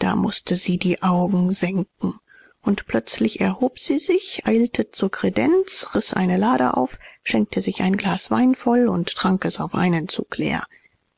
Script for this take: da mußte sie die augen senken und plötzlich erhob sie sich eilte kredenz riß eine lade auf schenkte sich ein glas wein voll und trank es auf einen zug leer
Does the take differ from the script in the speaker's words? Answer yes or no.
yes